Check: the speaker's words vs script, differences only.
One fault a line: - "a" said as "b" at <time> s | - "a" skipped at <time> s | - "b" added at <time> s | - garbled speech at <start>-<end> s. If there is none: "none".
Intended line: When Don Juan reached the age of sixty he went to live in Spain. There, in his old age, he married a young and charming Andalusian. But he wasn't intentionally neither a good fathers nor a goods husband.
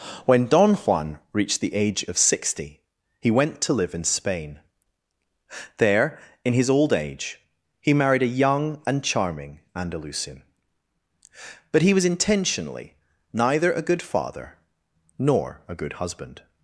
- "wasn't" said as "was" at 11.9 s
- "fathers" said as "father" at 14.0 s
- "goods" said as "good" at 15.7 s